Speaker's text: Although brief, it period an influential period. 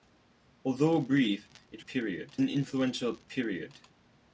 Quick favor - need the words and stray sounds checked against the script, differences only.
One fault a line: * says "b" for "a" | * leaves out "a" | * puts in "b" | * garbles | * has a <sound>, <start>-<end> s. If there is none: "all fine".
all fine